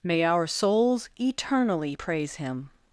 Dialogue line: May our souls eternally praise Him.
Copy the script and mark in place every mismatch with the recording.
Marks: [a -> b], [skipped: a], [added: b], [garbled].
May our souls eternally praise Him.